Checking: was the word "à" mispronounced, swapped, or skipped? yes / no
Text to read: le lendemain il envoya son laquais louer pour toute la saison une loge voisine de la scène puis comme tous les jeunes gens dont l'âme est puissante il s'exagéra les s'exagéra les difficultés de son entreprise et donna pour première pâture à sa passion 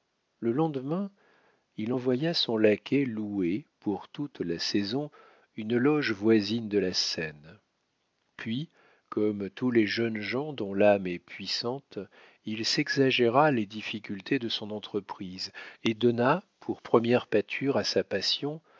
no